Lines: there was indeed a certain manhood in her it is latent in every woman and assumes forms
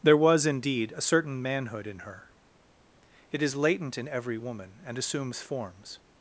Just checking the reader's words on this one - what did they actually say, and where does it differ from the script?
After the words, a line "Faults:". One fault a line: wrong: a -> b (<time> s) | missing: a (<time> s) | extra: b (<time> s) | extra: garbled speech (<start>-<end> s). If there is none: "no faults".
there was indeed a certain manhood in her it is latent in every woman and assumes forms
Faults:
no faults